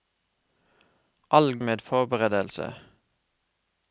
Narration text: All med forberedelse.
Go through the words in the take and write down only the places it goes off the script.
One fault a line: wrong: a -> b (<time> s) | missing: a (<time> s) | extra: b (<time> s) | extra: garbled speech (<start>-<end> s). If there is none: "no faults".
no faults